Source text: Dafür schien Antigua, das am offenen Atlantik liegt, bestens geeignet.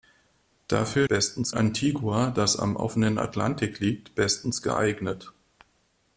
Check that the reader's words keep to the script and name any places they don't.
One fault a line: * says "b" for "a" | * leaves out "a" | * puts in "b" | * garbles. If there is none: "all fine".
* says "bestens" for "schien"